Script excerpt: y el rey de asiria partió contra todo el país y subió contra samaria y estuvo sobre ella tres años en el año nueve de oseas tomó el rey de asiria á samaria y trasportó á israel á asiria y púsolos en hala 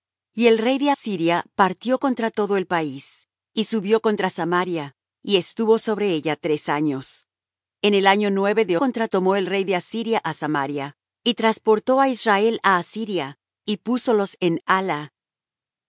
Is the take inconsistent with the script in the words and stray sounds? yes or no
yes